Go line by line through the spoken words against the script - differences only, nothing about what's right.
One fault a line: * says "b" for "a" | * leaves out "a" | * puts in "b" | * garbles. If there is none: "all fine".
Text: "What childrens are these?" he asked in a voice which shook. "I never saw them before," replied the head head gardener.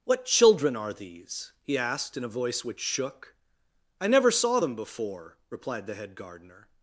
* says "children" for "childrens"
* leaves out "head"